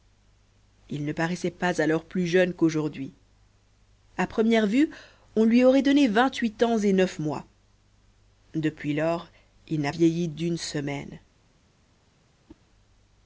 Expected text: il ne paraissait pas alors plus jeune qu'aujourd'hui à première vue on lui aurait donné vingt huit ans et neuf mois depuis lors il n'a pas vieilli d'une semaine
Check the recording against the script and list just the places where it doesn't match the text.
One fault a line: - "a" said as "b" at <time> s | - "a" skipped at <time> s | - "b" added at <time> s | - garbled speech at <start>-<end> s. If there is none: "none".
- "pas" skipped at 9.9 s